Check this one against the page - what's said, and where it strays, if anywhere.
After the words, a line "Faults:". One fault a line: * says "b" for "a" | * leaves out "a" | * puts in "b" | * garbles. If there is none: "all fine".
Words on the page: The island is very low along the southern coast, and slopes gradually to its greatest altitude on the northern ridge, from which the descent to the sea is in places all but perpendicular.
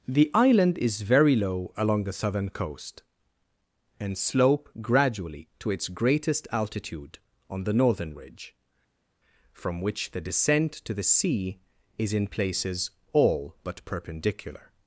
The island is very low along the southern coast, and slope gradually to its greatest altitude on the northern ridge, from which the descent to the sea is in places all but perpendicular.
Faults:
* says "slope" for "slopes"